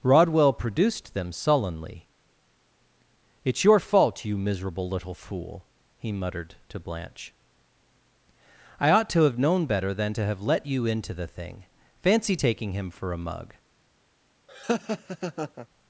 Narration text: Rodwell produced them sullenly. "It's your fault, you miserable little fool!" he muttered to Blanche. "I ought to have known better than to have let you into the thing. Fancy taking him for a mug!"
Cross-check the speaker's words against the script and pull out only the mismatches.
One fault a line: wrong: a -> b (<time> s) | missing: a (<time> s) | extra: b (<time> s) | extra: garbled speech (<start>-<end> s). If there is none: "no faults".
no faults